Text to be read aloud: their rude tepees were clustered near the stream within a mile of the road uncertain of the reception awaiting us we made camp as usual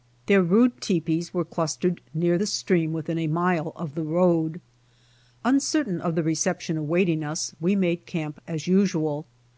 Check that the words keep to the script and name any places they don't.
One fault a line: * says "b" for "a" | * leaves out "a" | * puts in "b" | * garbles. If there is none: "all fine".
all fine